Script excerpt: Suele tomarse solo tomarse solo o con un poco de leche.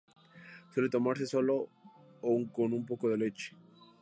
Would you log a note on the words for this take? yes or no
yes